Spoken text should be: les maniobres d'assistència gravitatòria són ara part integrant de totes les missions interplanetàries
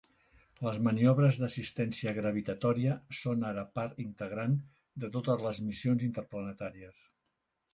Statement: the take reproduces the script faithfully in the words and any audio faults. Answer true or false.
true